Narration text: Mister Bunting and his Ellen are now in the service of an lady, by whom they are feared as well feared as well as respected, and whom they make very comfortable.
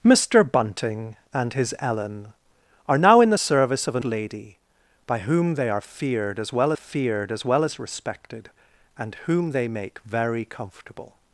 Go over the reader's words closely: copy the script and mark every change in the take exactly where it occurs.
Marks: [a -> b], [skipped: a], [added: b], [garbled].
Mister Bunting and his Ellen are now in the service of an lady, by whom they are feared as well feared as well as respected, and whom they make very comfortable.